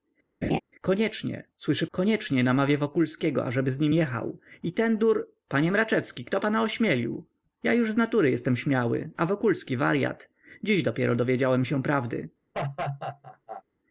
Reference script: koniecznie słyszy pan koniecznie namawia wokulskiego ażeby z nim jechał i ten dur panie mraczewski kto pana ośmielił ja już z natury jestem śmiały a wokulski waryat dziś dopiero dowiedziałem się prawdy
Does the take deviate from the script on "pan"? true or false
true